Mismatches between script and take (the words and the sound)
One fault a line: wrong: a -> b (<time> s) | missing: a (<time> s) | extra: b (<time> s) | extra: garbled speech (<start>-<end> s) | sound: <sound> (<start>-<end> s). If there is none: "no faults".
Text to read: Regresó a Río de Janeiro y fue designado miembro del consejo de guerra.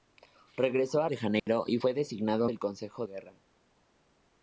missing: Río (1.1 s)
sound: dropout (1.4-1.5 s)
missing: miembro (2.5 s)
missing: de (3.1 s)